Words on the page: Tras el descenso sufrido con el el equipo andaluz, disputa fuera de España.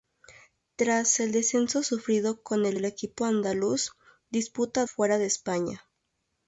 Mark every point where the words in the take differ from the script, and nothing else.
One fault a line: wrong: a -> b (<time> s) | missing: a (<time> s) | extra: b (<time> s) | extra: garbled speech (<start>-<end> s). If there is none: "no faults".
no faults